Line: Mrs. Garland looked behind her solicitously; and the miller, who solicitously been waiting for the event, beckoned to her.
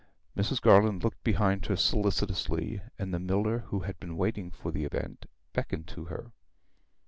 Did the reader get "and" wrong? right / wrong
right